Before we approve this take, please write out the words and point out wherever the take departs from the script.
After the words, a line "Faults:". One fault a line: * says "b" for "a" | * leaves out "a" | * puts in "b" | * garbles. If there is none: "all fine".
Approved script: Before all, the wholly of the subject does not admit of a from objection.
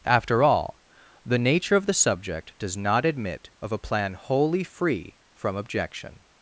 After all, the nature of the subject does not admit of a plan wholly free from objection.
Faults:
* says "After" for "Before"
* says "nature" for "wholly"
* puts in "plan wholly free"